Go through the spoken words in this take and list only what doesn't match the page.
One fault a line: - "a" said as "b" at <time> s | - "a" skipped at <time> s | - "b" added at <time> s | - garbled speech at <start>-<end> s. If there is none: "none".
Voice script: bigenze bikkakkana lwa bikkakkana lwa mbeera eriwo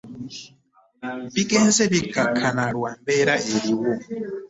- "bikkakkana lwa" skipped at 2.9 s